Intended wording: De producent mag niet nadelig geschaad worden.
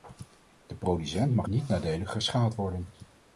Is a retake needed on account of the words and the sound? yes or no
no